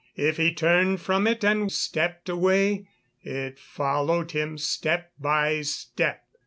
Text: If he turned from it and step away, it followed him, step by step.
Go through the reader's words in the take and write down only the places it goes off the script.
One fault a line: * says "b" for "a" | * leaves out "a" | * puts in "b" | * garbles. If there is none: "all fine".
all fine